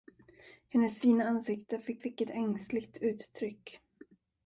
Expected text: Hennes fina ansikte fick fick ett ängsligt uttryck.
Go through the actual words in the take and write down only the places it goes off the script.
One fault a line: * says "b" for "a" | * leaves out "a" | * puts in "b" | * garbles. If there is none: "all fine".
all fine